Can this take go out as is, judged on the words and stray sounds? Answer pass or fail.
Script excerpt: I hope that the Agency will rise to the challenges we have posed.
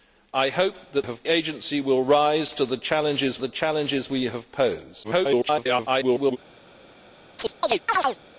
fail